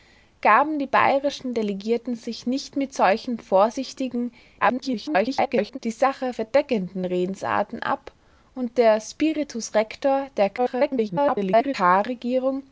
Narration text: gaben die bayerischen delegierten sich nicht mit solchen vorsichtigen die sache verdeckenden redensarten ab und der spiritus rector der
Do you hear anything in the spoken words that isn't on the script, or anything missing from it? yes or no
yes